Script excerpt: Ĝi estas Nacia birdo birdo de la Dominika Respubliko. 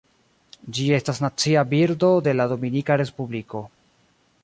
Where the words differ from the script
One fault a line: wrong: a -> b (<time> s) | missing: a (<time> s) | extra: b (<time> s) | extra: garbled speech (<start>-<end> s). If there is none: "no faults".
missing: birdo (2.1 s)